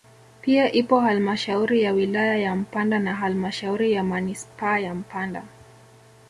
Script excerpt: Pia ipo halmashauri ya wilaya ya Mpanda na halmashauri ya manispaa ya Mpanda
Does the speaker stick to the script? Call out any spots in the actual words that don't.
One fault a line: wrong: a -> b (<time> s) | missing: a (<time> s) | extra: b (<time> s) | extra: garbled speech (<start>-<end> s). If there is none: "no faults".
no faults